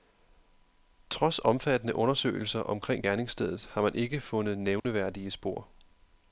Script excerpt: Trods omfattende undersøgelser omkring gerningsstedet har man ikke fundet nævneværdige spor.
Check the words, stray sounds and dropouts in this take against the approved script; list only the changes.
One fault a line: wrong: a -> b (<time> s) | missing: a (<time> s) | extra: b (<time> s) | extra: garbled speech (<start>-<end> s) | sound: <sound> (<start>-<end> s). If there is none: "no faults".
sound: dropout (4.8-4.8 s)